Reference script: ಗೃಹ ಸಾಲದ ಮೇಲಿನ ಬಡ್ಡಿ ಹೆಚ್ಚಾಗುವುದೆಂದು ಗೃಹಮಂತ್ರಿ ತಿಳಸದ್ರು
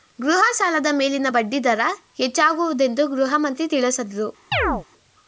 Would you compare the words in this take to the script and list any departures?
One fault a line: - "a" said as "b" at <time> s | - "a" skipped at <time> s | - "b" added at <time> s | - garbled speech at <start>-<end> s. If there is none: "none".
- "ದರ" added at 1.6 s